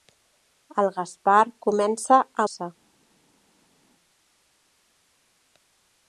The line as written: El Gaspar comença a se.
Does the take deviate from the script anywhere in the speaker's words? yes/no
no